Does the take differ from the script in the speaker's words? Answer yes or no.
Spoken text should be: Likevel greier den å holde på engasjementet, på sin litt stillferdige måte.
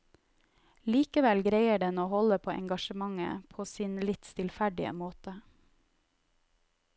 no